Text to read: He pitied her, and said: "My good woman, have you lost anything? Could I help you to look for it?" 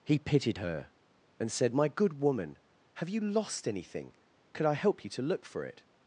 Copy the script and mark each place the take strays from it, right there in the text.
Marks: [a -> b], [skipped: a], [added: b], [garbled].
He pitied her, and said: "My good woman, have you lost anything? Could I help you to look for it?"